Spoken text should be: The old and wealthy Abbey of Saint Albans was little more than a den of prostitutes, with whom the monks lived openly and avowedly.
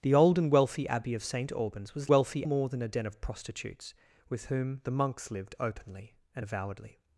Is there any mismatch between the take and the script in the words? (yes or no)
yes